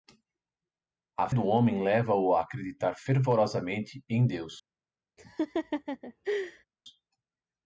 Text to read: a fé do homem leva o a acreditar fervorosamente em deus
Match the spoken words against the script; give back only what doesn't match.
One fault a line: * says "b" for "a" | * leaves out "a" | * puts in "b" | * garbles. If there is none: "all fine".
* leaves out "fé"